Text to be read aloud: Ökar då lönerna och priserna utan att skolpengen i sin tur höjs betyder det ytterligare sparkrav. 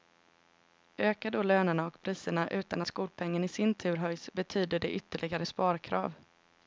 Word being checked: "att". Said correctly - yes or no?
no